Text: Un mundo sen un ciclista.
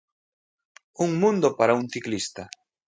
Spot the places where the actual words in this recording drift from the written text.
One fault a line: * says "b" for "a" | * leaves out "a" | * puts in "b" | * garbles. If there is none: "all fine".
* says "para" for "sen"